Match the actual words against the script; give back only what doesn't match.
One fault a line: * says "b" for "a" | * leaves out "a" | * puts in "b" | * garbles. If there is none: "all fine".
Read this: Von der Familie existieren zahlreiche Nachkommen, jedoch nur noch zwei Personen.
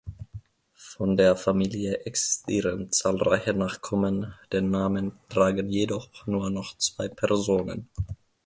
* puts in "den Namen tragen"